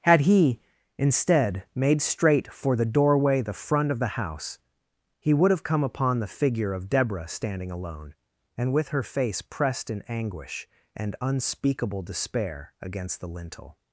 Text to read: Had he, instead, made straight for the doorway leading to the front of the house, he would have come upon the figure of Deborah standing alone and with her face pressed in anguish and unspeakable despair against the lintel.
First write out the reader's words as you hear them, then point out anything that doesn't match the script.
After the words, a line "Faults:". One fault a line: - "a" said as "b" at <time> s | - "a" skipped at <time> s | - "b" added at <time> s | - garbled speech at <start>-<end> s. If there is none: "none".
Had he, instead, made straight for the doorway the front of the house, he would have come upon the figure of Deborah standing alone and with her face pressed in anguish and unspeakable despair against the lintel.
Faults:
- "leading to" skipped at 3.4 s